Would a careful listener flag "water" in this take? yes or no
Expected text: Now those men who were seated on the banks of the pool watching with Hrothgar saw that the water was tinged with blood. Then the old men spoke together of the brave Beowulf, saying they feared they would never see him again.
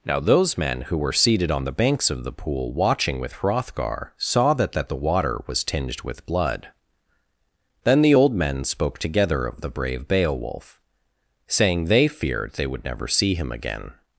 no